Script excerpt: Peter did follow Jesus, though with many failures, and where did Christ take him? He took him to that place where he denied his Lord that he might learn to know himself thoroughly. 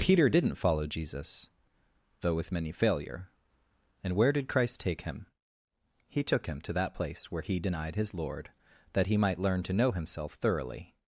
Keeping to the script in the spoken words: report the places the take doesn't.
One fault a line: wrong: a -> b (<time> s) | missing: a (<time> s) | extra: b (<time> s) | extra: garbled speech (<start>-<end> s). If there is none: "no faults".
wrong: did -> didn't (0.3 s)
wrong: failures -> failure (2.7 s)